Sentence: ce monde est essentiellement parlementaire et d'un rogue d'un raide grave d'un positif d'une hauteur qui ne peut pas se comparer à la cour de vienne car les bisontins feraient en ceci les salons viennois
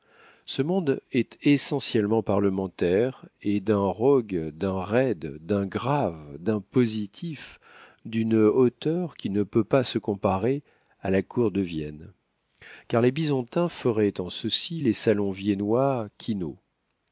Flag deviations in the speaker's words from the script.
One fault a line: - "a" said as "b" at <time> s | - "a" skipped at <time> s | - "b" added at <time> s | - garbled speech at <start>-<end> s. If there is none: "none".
- "d'un" added at 5.5 s